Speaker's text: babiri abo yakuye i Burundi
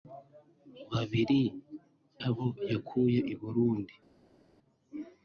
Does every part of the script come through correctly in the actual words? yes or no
yes